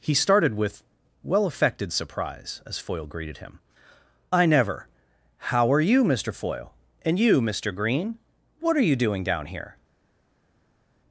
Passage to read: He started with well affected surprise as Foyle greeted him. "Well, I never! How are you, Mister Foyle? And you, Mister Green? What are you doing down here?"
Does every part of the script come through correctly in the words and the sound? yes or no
no